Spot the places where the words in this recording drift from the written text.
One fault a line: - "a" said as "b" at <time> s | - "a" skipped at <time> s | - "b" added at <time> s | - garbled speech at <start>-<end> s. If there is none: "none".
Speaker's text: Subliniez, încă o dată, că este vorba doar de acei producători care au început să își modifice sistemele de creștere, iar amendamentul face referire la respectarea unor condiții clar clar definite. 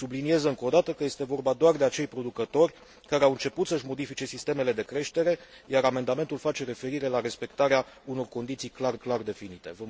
none